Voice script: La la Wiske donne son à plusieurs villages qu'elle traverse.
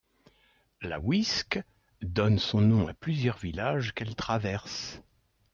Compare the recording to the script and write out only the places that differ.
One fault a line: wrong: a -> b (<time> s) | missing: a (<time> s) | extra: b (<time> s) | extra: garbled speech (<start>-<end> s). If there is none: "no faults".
missing: la (1.0 s)
extra: nom (2.6 s)